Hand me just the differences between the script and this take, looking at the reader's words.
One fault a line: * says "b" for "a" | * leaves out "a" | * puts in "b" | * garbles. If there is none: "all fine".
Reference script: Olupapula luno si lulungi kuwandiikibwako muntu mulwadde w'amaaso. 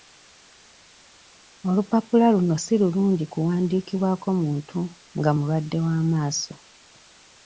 * puts in "nga"